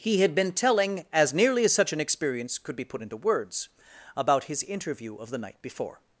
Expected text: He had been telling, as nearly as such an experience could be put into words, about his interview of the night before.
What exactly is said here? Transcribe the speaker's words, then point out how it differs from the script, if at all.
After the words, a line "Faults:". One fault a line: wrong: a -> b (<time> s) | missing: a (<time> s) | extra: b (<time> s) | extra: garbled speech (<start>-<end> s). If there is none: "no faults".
He had been telling, as nearly as such an experience could be put into words, about his interview of the night before.
Faults:
no faults